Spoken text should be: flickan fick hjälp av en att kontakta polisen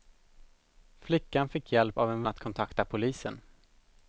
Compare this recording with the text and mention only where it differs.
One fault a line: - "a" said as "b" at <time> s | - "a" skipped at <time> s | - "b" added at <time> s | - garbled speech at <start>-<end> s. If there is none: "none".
none